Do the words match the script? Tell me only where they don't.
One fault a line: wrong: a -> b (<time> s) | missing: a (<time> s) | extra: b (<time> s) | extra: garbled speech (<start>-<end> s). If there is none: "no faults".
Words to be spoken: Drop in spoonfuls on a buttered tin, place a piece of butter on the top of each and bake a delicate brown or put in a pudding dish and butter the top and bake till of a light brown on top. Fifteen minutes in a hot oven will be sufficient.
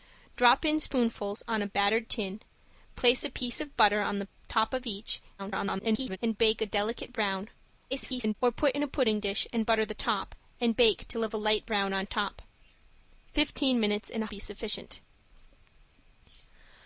extra: garbled speech (5.4-6.2 s)
extra: garbled speech (7.9-8.3 s)
missing: hot oven will (14.3 s)